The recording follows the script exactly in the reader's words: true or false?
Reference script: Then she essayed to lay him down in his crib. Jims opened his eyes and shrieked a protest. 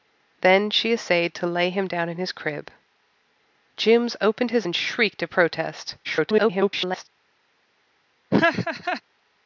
false